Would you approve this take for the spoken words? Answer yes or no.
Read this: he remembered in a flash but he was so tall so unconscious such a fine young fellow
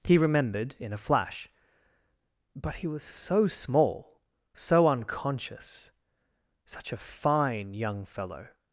no